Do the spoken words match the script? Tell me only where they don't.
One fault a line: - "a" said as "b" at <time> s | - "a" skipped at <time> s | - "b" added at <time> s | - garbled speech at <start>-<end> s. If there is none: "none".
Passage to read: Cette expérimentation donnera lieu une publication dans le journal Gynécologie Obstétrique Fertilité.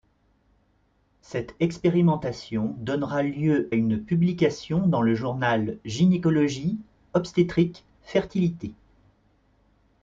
none